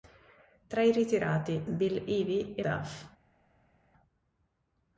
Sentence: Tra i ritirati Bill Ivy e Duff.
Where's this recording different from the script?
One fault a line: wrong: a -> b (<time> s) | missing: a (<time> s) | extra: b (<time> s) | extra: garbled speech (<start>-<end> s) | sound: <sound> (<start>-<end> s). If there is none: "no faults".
no faults